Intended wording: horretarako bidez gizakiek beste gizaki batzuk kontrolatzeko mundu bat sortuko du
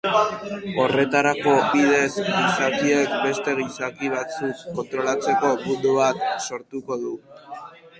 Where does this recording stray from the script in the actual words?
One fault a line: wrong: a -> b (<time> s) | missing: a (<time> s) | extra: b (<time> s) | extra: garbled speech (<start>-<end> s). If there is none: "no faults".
no faults